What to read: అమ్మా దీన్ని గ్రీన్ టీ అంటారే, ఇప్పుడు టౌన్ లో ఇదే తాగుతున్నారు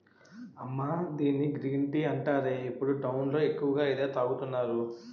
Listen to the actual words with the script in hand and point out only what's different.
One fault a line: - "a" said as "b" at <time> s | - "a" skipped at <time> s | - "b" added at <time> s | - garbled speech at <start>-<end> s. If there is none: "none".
- "ఎక్కువగా" added at 3.4 s